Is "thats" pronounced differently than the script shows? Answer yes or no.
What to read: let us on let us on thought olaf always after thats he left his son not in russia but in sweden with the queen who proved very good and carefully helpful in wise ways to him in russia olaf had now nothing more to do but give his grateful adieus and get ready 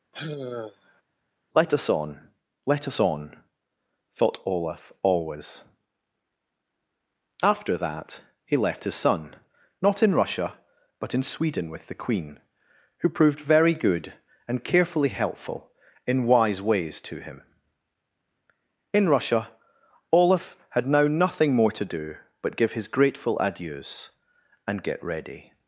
yes